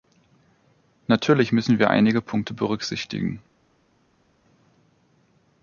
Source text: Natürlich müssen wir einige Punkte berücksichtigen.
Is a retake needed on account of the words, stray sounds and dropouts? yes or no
no